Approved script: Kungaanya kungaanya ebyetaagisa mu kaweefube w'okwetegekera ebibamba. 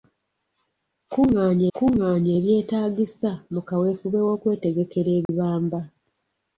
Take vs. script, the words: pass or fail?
pass